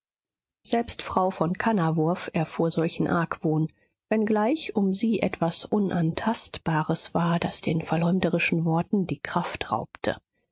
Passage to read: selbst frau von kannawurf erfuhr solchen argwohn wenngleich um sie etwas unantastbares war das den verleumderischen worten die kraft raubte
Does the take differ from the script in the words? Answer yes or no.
no